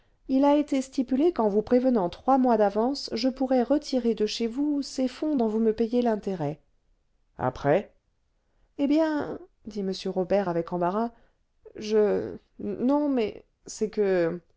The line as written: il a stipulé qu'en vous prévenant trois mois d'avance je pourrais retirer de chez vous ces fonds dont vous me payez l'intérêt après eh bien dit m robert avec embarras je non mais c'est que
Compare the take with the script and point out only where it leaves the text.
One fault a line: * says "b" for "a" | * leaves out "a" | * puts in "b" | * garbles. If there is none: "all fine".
* puts in "été"